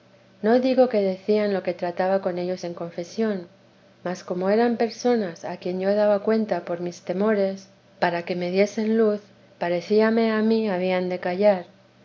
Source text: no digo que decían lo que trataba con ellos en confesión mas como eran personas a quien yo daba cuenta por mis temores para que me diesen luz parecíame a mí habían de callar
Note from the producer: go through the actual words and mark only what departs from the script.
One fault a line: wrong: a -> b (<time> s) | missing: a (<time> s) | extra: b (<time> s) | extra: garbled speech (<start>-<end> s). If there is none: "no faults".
no faults